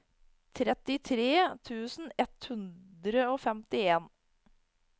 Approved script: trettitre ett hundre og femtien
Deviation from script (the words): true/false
true